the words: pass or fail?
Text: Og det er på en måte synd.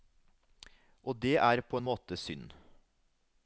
pass